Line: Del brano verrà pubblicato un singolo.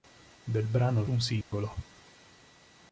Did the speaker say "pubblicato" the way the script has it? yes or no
no